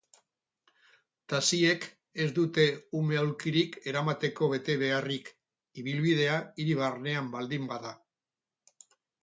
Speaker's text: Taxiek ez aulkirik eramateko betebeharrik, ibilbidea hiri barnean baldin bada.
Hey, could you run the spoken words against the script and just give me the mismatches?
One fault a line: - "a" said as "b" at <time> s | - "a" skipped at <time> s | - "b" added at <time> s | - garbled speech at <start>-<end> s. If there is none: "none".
- "dute ume" added at 2.4 s